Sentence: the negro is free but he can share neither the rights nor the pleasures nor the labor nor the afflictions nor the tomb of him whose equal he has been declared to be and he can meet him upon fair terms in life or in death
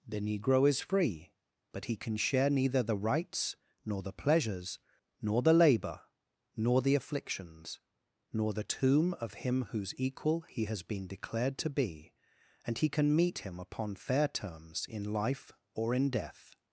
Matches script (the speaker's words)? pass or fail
pass